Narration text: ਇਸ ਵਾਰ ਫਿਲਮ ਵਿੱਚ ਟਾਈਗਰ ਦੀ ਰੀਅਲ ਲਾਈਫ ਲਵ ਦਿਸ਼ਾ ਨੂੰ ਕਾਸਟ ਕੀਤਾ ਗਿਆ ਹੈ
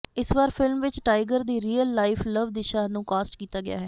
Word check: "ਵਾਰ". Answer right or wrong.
right